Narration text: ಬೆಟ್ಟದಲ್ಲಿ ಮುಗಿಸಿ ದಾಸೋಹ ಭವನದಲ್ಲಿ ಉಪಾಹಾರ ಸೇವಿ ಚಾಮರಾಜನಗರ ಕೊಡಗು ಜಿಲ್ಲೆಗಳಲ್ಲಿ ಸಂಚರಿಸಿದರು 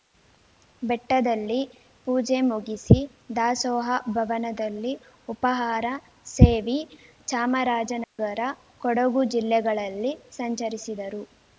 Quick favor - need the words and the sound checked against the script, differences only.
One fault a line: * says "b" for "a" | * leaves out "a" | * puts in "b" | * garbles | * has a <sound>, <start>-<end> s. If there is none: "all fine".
* puts in "ಪೂಜೆ"
* has a dropout, 8.0-8.2 s